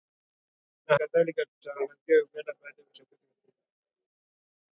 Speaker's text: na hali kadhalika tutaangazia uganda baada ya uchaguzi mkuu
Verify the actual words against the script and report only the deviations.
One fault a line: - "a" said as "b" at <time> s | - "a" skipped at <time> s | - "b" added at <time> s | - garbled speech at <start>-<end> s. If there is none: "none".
- "hali" skipped at 1.0 s